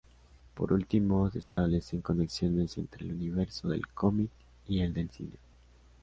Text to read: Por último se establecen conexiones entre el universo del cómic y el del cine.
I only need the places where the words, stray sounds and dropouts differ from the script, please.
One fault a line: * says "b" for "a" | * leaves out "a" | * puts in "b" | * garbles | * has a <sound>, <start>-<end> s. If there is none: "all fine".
* has a dropout, 1.4-1.6 s